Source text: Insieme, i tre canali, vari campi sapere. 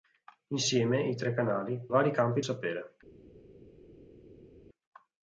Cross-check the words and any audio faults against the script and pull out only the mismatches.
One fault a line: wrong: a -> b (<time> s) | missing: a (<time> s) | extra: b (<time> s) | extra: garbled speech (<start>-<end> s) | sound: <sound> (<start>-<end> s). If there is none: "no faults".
no faults